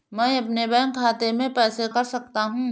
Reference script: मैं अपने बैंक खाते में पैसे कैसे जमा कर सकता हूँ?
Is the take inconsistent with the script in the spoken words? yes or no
yes